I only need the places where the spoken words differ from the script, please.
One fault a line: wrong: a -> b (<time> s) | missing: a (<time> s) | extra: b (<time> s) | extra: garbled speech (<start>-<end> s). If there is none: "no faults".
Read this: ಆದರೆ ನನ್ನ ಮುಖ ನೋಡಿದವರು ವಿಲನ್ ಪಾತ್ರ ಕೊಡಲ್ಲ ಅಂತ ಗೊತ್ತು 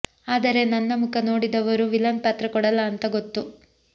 no faults